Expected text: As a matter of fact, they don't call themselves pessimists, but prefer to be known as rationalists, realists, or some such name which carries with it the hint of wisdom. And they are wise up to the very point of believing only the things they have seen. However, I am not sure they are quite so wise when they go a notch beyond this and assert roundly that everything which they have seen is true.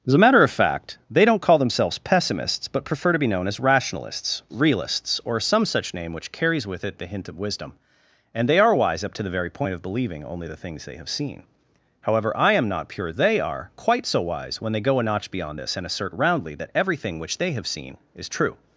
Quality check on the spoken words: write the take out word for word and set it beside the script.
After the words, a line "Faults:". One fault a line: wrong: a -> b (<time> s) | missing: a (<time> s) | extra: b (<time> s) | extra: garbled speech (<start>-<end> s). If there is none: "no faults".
As a matter of fact, they don't call themselves pessimists, but prefer to be known as rationalists, realists, or some such name which carries with it the hint of wisdom. And they are wise up to the very point of believing only the things they have seen. However, I am not pure they are quite so wise when they go a notch beyond this and assert roundly that everything which they have seen is true.
Faults:
wrong: sure -> pure (12.9 s)